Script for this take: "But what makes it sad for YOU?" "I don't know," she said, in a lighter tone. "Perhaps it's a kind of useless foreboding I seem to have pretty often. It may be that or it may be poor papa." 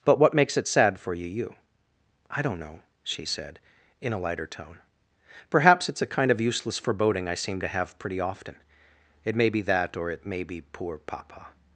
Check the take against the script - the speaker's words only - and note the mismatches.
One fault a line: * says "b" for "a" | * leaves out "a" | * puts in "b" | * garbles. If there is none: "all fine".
* puts in "you"